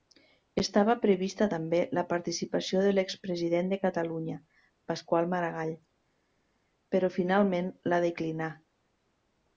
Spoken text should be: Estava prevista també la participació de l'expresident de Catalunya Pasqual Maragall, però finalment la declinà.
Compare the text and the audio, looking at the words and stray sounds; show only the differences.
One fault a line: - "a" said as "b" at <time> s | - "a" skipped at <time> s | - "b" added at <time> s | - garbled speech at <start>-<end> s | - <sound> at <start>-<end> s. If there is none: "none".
none